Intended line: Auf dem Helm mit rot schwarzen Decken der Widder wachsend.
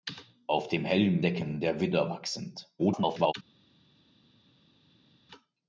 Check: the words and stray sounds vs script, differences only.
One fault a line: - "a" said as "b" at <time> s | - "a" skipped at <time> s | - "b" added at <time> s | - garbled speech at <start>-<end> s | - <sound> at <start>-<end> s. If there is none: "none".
- "mit rot schwarzen" skipped at 1.2 s
- garbled speech at 2.8-3.3 s